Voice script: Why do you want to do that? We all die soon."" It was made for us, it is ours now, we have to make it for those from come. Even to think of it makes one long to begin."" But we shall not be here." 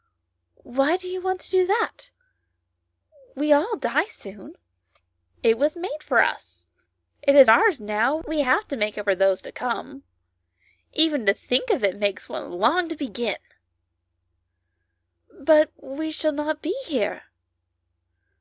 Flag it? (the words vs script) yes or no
yes